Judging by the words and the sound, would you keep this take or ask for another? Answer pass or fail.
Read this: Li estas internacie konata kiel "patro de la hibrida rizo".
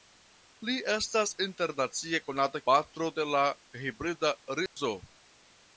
fail